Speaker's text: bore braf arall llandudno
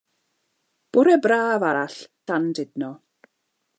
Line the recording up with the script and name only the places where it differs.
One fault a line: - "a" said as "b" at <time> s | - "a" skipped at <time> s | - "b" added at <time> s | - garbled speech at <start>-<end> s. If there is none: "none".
none